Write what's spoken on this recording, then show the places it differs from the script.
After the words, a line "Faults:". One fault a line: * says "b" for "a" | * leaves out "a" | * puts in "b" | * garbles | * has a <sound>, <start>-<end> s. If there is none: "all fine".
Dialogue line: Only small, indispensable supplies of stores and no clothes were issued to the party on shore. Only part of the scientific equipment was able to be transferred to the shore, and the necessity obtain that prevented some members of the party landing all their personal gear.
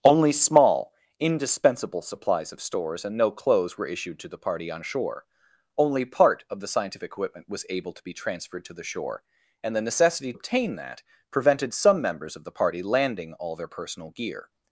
Only small, indispensable supplies of stores and no clothes were issued to the party on shore. Only part of the scientific equipment was able to be transferred to the shore, and the necessity obtain that prevented some members of the party landing all their personal gear.
Faults:
all fine